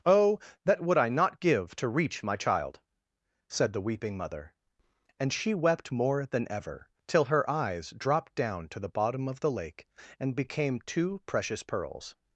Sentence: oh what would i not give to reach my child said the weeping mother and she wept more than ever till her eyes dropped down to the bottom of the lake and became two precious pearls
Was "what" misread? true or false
true